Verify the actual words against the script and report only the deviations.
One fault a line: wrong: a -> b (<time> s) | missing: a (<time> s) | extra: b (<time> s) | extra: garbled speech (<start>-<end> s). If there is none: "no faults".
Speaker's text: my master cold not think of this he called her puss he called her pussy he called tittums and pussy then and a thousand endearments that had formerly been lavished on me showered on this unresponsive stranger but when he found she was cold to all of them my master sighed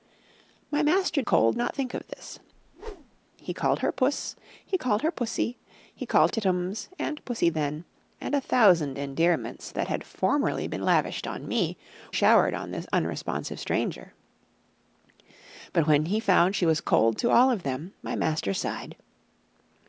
no faults